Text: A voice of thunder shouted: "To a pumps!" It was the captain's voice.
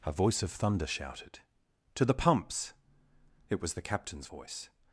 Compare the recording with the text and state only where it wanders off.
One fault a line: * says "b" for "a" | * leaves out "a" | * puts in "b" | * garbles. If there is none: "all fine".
* says "the" for "a"